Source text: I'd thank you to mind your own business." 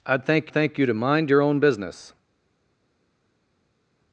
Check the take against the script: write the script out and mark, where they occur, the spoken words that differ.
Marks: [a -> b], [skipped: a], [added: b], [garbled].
I'd thank [added: thank] you to mind your own business."